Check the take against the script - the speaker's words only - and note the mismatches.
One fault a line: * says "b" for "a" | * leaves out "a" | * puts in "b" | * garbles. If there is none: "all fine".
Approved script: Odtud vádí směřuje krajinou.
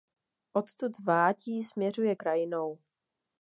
all fine